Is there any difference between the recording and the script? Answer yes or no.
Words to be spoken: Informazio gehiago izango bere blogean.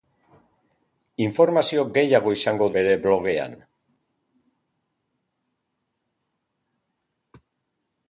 no